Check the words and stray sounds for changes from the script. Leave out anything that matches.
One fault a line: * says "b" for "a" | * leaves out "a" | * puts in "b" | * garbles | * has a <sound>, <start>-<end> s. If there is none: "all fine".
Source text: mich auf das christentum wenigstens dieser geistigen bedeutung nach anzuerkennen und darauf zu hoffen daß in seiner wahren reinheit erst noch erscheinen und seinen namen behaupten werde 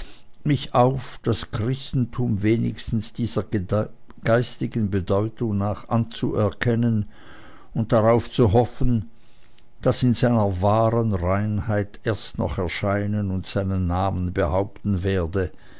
all fine